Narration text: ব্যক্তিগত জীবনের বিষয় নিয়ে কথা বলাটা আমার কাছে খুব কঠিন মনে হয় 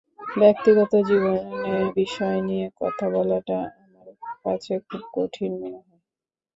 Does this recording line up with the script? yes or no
yes